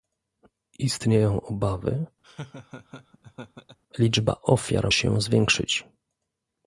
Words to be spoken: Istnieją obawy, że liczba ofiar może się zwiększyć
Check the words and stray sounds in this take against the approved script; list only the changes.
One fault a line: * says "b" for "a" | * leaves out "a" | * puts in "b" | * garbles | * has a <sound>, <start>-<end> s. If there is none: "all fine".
* leaves out "że"
* has a laugh, 2.2-3.8 s
* leaves out "może"